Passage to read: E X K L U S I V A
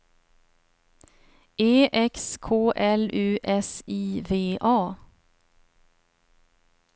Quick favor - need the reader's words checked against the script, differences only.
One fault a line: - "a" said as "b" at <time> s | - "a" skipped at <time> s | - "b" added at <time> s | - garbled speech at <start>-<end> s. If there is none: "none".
none